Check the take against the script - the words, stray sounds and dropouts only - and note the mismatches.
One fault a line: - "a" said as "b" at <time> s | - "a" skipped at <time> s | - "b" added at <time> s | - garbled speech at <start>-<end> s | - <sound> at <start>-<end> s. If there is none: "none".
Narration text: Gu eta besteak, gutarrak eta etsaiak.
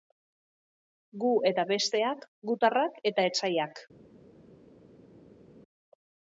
none